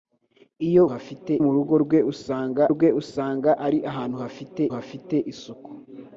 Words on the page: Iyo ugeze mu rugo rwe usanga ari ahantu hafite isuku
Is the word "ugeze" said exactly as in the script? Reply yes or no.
no